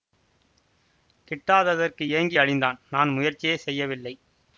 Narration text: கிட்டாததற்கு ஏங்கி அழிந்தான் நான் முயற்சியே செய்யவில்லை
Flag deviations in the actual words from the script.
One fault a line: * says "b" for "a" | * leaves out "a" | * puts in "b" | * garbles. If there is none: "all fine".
all fine